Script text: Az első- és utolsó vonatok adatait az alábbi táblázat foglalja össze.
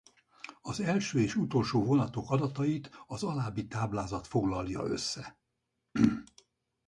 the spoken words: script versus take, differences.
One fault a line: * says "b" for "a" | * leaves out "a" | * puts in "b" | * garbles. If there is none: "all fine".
all fine